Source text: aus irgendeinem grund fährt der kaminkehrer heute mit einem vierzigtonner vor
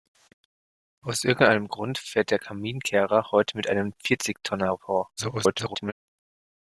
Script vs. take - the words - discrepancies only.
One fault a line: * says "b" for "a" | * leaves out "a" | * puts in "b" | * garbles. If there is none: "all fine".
* garbles